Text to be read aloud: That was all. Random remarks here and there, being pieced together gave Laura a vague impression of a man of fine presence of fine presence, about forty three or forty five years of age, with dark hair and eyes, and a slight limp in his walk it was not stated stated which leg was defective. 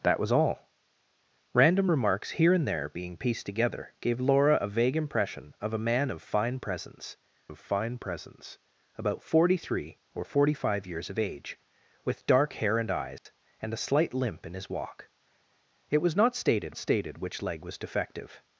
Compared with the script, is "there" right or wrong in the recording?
right